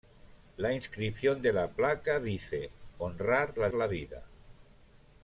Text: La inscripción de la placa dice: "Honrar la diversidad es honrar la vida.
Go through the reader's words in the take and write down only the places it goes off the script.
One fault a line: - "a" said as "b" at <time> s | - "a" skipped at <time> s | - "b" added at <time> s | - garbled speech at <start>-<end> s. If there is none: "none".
- "diversidad es honrar" skipped at 3.7 s